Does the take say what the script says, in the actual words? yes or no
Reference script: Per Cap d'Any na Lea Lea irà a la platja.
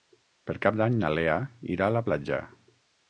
no